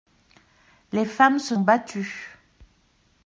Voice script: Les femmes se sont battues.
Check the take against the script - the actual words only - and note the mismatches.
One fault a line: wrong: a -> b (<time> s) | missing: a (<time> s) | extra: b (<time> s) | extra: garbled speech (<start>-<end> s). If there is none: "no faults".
missing: sont (1.6 s)